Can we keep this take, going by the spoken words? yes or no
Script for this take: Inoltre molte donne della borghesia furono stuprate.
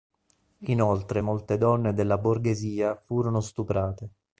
yes